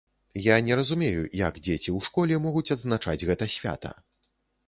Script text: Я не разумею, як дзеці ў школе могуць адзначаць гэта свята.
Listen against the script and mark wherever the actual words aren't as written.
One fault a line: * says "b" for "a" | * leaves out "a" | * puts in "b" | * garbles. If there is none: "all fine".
all fine